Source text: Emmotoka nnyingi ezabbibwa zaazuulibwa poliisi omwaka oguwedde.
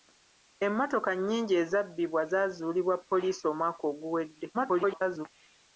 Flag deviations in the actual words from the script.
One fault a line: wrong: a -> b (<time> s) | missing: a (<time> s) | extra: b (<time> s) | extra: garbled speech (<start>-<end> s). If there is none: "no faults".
extra: garbled speech (4.5-5.3 s)